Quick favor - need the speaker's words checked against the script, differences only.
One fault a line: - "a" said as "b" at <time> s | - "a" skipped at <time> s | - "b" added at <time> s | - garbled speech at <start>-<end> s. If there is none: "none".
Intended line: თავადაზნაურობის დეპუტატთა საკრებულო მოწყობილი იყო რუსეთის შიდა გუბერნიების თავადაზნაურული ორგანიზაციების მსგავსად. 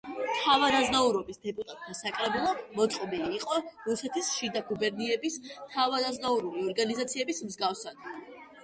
none